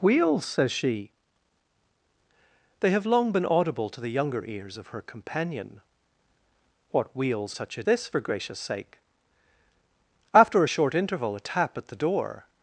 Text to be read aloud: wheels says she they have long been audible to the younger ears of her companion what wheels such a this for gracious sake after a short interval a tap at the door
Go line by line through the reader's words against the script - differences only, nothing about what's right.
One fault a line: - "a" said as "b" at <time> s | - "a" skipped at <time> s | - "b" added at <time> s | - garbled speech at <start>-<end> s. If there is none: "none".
none